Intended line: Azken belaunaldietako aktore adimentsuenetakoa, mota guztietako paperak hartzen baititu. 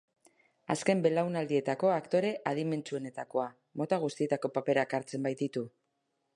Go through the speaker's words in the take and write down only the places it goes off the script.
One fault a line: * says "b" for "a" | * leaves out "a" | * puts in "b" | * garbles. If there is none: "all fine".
all fine